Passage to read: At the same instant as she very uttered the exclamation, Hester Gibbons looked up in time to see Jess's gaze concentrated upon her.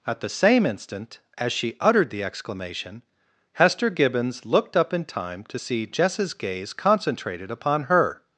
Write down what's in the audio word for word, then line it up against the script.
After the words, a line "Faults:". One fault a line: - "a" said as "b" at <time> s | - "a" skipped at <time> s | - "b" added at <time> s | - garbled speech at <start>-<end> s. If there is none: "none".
At the same instant as she uttered the exclamation, Hester Gibbons looked up in time to see Jess's gaze concentrated upon her.
Faults:
- "very" skipped at 1.8 s